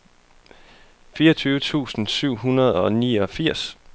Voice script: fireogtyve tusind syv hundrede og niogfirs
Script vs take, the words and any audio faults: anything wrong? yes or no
no